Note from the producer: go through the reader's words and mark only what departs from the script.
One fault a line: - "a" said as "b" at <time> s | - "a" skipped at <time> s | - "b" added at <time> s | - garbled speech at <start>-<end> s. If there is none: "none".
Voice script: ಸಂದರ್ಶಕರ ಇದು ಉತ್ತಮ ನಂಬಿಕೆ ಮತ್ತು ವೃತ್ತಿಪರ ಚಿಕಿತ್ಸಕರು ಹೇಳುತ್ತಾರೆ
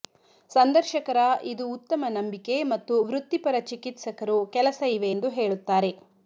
- "ಕೆಲಸ ಇವೆ ಎಂದು" added at 4.5 s